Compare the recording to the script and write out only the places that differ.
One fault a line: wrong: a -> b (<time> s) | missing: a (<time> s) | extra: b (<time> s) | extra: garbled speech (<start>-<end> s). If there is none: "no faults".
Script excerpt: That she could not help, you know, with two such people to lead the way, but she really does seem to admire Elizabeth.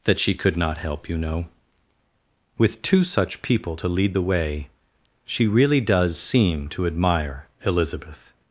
missing: but (4.7 s)